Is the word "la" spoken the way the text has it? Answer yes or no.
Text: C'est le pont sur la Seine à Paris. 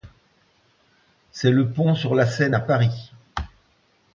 yes